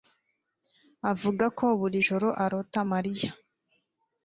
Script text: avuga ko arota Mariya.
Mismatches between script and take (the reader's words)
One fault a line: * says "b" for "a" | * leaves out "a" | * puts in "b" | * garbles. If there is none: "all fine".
* puts in "buri joro"